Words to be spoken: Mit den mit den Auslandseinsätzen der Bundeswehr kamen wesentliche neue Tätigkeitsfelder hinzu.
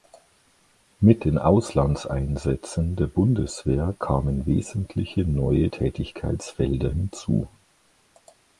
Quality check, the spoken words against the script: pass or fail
fail